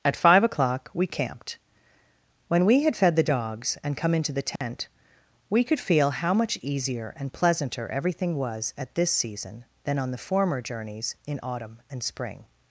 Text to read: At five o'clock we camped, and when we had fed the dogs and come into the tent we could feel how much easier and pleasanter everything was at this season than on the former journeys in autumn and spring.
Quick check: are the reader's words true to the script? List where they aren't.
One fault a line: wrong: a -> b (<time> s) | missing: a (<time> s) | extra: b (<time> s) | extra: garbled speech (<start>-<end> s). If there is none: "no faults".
missing: and (1.6 s)